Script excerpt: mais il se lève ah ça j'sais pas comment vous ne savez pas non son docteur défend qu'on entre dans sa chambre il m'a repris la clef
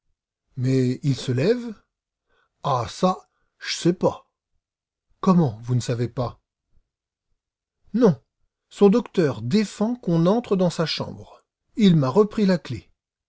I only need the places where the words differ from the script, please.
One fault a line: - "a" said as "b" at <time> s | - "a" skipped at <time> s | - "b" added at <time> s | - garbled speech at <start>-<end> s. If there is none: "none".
none